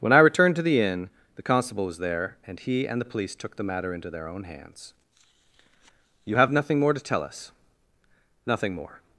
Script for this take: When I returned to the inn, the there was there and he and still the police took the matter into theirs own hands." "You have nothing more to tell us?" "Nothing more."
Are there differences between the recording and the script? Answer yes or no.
yes